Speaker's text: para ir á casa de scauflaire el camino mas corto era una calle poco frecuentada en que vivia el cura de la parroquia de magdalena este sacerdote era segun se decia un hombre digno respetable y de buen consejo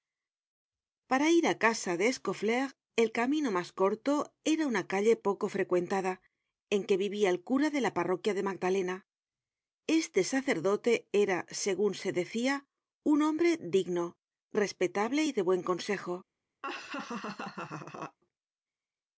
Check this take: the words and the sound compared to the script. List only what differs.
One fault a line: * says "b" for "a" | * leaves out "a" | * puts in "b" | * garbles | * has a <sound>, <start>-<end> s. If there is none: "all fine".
* has a laugh, 16.6-18.2 s